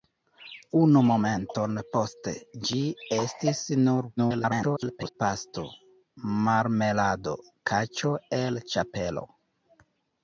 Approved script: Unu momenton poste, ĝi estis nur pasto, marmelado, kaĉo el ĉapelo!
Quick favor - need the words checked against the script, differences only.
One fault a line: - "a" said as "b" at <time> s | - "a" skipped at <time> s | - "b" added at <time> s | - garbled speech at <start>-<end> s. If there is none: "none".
- garbled speech at 4.2-5.1 s